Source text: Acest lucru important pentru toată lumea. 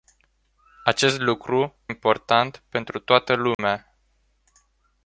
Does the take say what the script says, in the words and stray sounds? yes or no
no